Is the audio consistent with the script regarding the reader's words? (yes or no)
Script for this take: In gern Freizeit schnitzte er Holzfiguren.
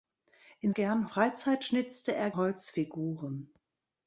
yes